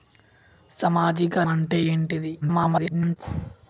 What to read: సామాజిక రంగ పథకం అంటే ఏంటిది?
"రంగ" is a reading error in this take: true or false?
true